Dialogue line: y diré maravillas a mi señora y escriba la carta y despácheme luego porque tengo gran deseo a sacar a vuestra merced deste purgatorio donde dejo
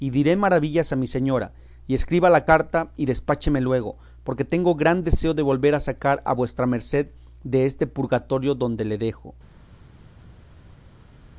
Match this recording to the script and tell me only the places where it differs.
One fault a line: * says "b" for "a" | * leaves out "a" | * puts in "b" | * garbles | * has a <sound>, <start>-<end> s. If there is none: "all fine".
* puts in "de volver"
* puts in "le"